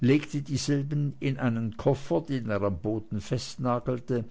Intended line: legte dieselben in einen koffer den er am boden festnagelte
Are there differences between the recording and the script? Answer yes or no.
no